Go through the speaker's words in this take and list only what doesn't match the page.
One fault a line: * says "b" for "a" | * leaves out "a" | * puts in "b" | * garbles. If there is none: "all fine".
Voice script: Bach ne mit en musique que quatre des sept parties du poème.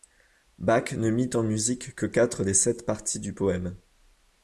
all fine